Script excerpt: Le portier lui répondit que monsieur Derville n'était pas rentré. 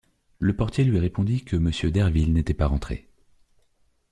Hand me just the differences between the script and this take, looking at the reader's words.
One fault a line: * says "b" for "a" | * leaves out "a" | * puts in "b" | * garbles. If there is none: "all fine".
all fine